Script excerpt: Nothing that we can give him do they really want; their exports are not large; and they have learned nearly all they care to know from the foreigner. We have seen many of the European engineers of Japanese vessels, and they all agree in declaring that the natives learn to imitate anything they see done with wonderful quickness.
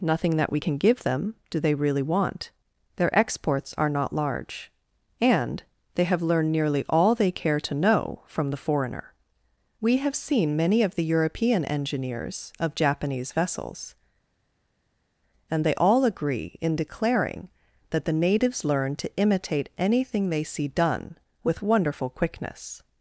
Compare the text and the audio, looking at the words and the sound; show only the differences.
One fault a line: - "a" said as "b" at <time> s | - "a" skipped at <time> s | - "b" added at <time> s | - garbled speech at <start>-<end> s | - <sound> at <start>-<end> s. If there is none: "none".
- "him" said as "them" at 1.0 s